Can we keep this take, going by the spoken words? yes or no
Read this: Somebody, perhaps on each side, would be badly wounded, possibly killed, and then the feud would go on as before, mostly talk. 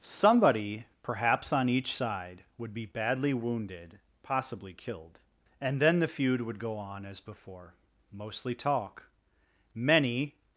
no